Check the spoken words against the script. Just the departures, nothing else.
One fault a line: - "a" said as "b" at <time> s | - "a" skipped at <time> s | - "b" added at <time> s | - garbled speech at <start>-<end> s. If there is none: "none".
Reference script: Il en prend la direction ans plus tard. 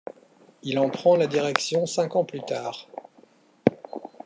- "cinq" added at 1.9 s